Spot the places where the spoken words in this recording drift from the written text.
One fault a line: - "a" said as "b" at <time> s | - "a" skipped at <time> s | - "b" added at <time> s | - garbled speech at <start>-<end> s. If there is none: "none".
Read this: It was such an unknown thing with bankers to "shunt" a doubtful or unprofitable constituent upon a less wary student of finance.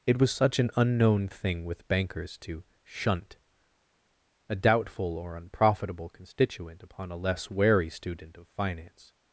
none